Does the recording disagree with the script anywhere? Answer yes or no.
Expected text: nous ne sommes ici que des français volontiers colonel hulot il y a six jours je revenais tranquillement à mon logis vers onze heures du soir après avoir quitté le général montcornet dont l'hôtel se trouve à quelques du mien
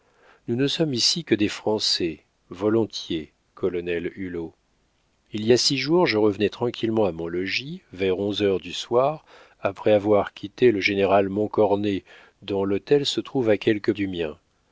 no